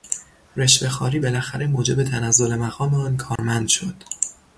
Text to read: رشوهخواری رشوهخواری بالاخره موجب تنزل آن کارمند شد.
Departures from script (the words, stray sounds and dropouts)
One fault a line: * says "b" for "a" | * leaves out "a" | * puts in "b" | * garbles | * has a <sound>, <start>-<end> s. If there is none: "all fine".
* leaves out "رشوهخواری"
* puts in "مقام"
* has a dropout, 3.4-3.4 s